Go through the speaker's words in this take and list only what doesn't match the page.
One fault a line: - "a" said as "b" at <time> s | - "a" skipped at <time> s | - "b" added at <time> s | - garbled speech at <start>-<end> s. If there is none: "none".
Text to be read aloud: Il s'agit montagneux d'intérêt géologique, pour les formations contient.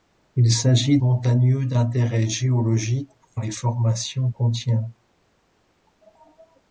none